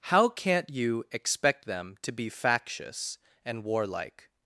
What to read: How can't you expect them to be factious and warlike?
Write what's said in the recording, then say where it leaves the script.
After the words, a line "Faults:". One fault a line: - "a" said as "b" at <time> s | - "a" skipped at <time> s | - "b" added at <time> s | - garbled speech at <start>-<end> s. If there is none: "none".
How can't you expect them to be factious and warlike?
Faults:
none